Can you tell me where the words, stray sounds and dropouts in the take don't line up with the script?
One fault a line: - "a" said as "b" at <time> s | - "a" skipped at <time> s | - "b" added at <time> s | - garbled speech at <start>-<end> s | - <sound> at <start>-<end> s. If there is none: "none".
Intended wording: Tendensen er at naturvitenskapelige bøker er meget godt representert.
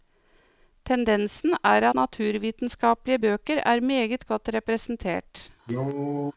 - "at" skipped at 1.9 s
- cough at 5.6-6.3 s